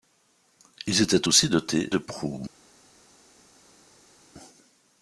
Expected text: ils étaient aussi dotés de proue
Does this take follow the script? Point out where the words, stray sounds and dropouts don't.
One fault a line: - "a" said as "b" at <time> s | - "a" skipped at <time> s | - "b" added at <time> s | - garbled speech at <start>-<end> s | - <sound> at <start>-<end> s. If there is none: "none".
none